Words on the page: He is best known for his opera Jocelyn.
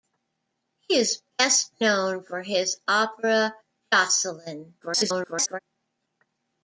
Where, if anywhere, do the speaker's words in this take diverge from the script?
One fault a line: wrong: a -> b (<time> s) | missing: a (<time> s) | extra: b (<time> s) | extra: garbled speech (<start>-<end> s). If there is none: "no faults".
extra: garbled speech (4.8-5.6 s)